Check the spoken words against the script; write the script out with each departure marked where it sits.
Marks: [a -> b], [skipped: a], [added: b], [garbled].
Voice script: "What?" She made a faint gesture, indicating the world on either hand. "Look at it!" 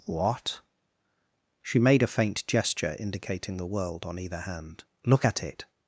"What?" She made a faint gesture, indicating the world on either hand. "Look at it!"